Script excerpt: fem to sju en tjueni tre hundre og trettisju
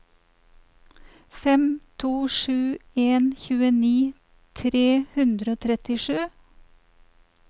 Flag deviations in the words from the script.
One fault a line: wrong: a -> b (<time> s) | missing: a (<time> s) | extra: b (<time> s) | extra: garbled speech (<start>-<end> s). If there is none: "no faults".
no faults